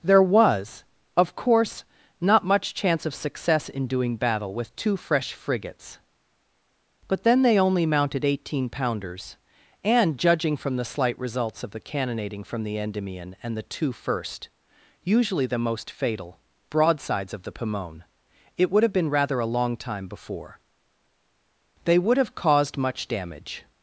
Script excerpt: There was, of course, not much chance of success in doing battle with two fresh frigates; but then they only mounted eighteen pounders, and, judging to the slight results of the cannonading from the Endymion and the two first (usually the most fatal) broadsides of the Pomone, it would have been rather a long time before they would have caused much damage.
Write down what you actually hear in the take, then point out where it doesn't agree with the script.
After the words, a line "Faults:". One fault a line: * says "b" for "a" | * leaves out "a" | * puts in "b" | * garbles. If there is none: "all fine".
There was, of course, not much chance of success in doing battle with two fresh frigates; but then they only mounted eighteen pounders, and, judging from the slight results of the cannonading from the Endymion and the two first (usually the most fatal) broadsides of the Pomone, it would have been rather a long time before they would have caused much damage.
Faults:
* says "from" for "to"